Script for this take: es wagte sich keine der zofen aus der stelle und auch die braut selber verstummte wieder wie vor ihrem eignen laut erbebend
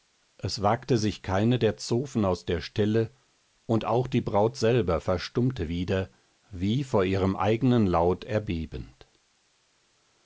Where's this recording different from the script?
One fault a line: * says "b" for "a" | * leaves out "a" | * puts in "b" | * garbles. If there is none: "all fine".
all fine